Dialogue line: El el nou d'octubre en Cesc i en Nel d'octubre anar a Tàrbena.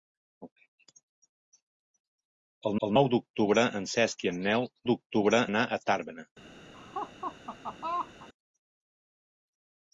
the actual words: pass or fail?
pass